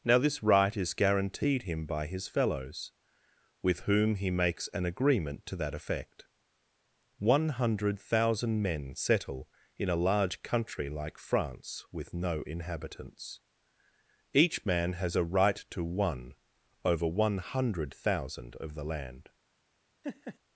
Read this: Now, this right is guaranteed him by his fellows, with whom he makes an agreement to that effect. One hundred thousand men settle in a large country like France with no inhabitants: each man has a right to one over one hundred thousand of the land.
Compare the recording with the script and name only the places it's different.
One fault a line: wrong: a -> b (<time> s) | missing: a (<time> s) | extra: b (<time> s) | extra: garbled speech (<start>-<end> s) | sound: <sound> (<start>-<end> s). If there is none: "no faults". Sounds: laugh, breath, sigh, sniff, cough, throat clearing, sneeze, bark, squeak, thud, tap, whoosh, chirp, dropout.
sound: laugh (20.0-20.4 s)